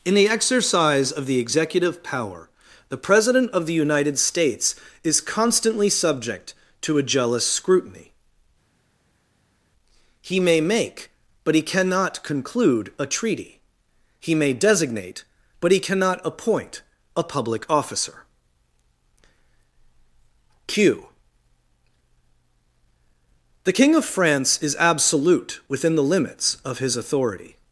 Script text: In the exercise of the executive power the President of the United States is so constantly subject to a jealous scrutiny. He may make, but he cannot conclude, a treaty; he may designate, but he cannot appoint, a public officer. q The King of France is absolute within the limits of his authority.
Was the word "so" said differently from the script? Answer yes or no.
yes